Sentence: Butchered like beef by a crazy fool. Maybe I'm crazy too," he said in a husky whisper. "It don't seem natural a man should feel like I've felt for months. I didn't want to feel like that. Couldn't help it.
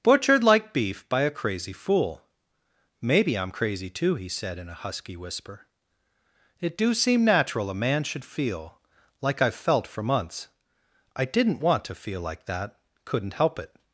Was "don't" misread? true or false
true